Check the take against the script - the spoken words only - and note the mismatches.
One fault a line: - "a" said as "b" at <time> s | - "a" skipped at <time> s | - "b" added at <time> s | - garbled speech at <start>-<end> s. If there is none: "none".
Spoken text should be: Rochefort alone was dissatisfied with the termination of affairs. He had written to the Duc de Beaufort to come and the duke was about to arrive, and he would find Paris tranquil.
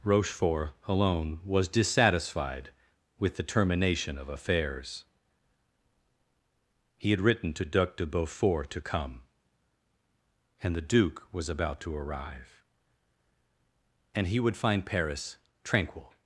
- "the" skipped at 7.7 s